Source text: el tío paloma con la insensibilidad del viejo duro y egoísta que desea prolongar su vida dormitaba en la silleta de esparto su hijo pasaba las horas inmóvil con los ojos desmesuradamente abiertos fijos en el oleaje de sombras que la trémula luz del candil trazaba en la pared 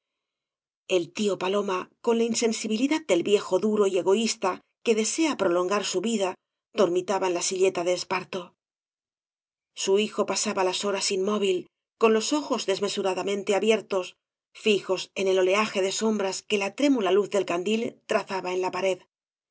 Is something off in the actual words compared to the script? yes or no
no